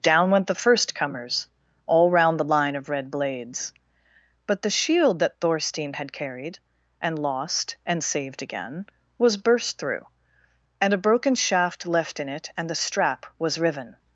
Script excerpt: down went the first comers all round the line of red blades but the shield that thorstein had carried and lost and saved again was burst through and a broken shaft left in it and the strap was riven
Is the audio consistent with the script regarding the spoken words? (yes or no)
yes